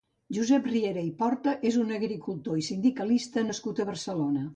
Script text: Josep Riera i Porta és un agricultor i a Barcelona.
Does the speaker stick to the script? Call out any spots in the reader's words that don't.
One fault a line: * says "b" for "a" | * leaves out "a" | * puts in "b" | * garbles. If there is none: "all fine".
* puts in "sindicalista nascut"